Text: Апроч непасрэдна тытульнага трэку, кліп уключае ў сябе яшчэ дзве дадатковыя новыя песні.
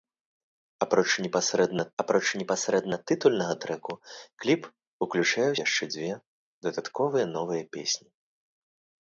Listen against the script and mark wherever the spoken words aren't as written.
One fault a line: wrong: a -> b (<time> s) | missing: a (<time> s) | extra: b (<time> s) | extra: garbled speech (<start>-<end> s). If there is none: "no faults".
extra: апроч непасрэдна (2.0 s)
missing: сябе (5.6 s)